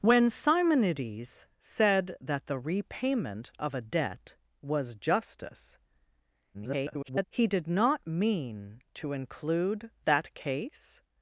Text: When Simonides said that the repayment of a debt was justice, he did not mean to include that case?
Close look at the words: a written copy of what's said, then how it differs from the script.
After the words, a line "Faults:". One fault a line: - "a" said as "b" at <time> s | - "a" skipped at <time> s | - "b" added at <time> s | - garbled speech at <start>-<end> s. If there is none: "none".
When Simonides said that the repayment of a debt was justice, [garbled] he did not mean to include that case?
Faults:
- garbled speech at 6.5-7.2 s